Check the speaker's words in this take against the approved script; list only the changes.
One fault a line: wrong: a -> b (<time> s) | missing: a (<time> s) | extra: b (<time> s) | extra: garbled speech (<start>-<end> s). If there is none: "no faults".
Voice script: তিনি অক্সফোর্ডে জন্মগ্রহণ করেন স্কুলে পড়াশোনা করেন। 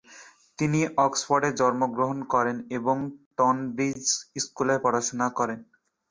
extra: এবং টনব্রিজ (2.8 s)